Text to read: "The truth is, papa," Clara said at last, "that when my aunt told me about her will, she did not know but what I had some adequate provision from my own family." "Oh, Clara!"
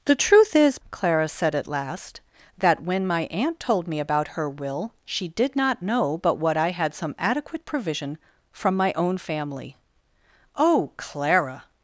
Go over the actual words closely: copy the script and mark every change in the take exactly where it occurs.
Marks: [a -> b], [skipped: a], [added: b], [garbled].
"The truth is, [skipped: papa,"] Clara said at last, "that when my aunt told me about her will, she did not know but what I had some adequate provision from my own family." "Oh, Clara!"